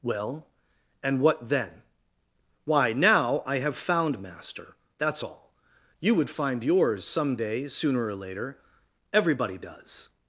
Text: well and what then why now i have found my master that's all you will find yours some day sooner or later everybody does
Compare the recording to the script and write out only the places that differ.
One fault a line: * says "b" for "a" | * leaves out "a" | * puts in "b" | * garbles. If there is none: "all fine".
* leaves out "my"
* says "would" for "will"